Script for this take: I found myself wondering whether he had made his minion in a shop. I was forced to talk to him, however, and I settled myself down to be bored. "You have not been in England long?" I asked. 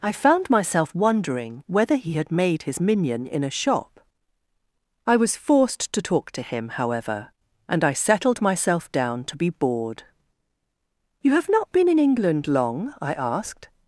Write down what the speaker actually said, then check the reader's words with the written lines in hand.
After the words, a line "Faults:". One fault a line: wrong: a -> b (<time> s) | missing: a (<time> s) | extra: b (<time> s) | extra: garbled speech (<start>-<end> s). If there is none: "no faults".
I found myself wondering whether he had made his minion in a shop. I was forced to talk to him, however, and I settled myself down to be bored. "You have not been in England long?" I asked.
Faults:
no faults